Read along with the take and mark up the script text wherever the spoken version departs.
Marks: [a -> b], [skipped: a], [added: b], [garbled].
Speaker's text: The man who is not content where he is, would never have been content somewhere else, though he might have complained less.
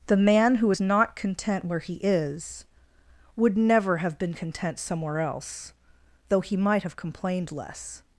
The man who is not content where he is, would never have been content somewhere else, though he might have complained less.